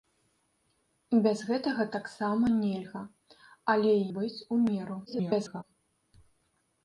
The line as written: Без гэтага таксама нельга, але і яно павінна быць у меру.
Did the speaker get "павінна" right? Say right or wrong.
wrong